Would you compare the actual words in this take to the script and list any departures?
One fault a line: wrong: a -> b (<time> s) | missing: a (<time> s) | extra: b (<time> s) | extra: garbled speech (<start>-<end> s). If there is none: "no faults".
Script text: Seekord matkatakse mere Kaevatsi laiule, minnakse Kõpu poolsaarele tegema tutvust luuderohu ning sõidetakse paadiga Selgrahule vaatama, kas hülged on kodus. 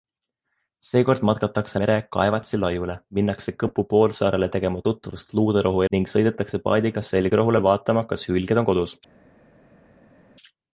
no faults